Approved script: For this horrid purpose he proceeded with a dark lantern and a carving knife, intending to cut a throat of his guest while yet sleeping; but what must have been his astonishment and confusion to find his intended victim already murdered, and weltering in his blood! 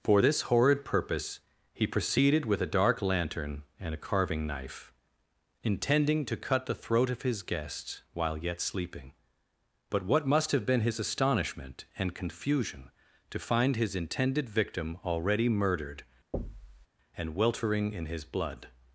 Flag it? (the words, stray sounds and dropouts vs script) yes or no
yes